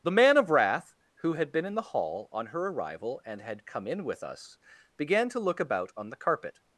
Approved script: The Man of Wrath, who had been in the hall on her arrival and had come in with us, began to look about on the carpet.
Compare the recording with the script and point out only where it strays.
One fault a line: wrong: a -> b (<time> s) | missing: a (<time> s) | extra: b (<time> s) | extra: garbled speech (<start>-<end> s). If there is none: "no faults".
no faults